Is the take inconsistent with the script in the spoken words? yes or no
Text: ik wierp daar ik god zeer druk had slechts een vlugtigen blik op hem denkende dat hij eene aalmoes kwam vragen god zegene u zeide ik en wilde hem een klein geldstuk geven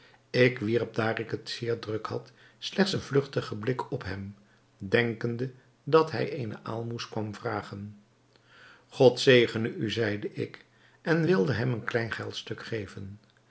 yes